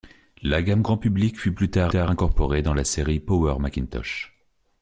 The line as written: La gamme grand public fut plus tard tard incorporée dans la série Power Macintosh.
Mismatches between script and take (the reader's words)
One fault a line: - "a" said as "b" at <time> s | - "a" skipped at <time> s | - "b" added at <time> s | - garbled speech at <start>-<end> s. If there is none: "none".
none